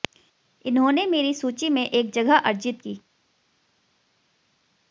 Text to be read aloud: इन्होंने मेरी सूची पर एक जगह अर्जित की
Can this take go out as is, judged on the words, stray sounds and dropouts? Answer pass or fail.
fail